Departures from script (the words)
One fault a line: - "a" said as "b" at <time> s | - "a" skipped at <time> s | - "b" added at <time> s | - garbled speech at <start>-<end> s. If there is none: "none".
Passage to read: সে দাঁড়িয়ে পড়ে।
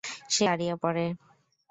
none